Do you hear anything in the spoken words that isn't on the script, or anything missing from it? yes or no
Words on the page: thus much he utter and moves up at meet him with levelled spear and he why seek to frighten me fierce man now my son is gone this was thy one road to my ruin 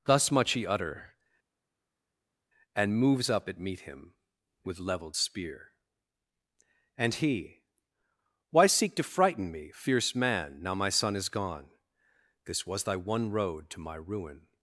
no